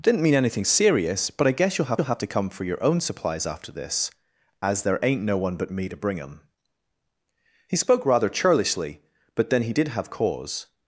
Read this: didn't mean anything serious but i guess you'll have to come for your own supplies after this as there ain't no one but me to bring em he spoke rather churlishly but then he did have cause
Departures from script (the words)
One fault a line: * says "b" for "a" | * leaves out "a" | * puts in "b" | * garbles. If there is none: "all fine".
* puts in "you'll have"